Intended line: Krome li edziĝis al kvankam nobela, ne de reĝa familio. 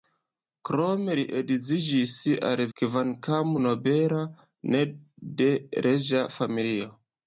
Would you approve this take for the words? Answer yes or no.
yes